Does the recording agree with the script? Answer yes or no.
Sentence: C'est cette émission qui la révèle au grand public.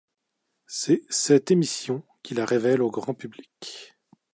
yes